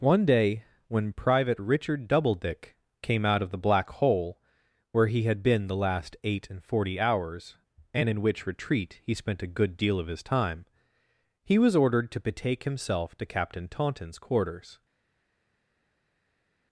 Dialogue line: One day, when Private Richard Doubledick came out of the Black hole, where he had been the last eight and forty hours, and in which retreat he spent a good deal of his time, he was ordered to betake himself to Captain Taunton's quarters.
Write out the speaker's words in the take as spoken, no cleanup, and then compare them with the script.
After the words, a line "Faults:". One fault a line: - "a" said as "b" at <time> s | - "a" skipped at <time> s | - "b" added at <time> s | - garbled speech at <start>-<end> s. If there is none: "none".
One day, when Private Richard Doubledick came out of the Black hole, where he had been the last eight and forty hours, and in which retreat he spent a good deal of his time, he was ordered to betake himself to Captain Taunton's quarters.
Faults:
none